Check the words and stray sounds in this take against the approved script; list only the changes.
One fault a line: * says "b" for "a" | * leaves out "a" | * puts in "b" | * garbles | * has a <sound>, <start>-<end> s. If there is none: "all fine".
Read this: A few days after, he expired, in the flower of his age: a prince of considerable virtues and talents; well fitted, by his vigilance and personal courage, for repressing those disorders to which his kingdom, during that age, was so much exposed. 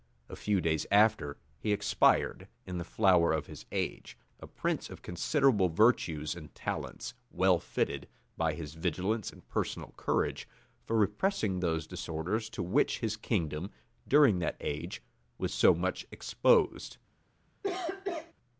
* has a cough, 17.6-18.3 s